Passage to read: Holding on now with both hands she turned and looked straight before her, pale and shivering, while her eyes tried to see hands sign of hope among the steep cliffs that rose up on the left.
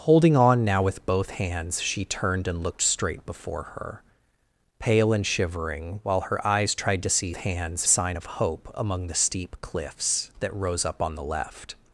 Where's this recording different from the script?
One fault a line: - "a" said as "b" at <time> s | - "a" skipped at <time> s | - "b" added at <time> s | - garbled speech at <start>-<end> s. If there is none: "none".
none